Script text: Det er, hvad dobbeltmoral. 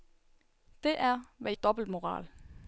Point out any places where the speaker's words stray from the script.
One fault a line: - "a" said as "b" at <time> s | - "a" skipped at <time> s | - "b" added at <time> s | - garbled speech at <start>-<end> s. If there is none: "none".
none